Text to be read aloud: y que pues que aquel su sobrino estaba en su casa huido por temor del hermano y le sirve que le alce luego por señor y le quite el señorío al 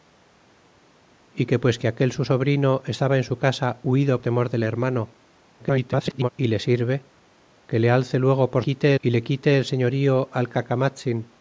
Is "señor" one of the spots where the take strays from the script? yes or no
yes